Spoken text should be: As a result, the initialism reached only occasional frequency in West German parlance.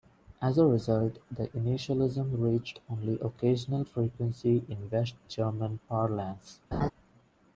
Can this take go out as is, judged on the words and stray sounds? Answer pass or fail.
fail